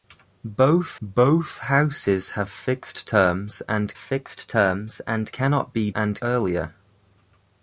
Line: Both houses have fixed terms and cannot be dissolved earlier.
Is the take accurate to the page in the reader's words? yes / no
no